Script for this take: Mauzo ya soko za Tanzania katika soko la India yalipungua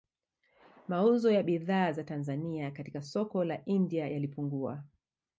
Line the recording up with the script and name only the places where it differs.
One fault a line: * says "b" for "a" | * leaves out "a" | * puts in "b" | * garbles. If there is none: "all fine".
* says "bidhaa" for "soko"